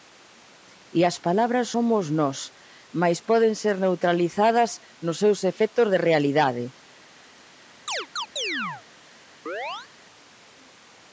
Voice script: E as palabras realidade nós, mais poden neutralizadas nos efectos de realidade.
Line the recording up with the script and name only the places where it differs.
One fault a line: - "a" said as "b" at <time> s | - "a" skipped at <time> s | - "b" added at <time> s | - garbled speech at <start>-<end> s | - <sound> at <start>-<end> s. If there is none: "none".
- "realidade" said as "somos" at 1.7 s
- "ser" added at 3.6 s
- "seus" added at 5.2 s
- chirp at 7.9-8.8 s
- chirp at 9.5-9.9 s